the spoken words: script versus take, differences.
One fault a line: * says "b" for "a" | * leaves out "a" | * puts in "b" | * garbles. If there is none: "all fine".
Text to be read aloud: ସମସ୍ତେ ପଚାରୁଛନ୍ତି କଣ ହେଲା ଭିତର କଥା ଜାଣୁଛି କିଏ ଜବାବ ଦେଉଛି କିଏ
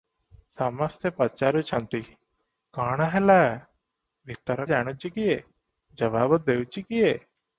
* leaves out "କଥା"